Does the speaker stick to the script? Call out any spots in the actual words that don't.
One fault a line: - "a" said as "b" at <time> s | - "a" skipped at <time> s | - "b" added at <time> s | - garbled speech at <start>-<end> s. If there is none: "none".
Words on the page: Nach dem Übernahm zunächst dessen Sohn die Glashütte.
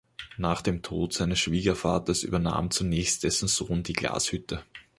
- "Tod seines Schwiegervaters" added at 0.8 s